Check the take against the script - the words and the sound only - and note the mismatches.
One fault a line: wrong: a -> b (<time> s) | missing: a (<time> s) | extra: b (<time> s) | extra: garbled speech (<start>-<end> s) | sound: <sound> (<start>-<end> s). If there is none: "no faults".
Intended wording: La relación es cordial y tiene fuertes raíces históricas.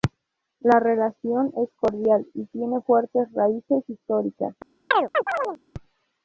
sound: chirp (4.9-5.6 s)